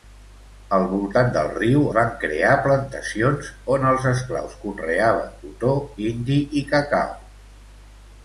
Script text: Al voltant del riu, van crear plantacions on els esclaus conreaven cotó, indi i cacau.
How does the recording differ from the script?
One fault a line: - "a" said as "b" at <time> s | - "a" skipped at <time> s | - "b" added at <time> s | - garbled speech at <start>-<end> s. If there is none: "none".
none